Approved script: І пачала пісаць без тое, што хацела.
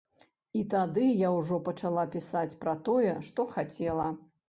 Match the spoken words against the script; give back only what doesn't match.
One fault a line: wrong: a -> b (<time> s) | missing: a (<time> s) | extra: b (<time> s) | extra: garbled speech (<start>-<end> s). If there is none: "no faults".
extra: тады я ўжо (0.7 s)
wrong: без -> пра (2.7 s)